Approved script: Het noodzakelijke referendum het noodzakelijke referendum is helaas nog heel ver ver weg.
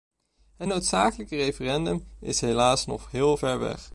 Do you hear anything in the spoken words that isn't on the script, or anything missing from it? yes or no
yes